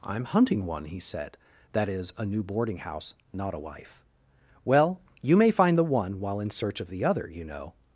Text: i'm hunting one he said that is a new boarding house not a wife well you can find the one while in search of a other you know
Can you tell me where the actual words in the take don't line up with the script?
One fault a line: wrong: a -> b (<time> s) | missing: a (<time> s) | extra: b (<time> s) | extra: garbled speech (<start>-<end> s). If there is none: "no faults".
wrong: can -> may (5.4 s)
wrong: a -> the (6.9 s)